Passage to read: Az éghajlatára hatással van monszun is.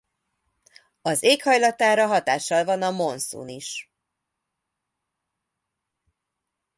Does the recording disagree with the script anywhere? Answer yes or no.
yes